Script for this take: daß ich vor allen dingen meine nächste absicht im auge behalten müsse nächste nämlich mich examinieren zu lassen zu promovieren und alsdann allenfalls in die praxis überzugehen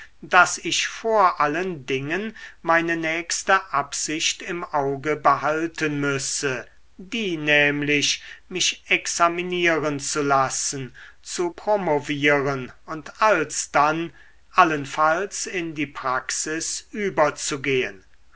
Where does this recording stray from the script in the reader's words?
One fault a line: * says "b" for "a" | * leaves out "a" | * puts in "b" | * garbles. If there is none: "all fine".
* says "die" for "nächste"